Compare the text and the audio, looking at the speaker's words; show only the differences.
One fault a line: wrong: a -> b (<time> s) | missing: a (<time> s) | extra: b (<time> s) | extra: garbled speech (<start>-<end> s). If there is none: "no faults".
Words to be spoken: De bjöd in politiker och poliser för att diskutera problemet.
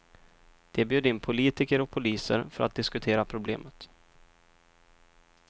no faults